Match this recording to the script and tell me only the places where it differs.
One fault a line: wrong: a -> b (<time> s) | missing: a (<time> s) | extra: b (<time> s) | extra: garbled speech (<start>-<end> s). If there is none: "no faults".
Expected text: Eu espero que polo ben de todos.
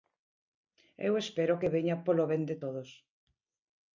extra: veña (1.7 s)